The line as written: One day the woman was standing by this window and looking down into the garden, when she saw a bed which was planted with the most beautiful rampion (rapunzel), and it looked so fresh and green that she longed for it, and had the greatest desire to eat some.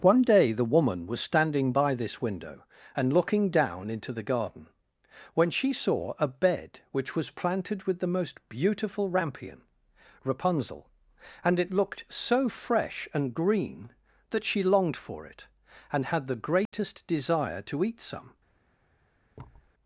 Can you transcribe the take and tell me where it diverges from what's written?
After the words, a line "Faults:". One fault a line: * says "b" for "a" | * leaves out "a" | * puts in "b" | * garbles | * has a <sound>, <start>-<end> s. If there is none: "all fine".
One day the woman was standing by this window and looking down into the garden, when she saw a bed which was planted with the most beautiful rampion (rapunzel), and it looked so fresh and green that she longed for it, and had the greatest desire to eat some.
Faults:
* has a dropout, 16.7-16.7 s
* has a thud, 19.4-19.7 s